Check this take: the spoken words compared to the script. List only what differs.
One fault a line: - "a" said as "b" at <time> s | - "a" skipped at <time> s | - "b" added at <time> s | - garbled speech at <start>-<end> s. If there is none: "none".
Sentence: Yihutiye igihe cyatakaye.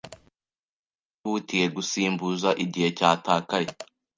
- "gusimbuza" added at 1.8 s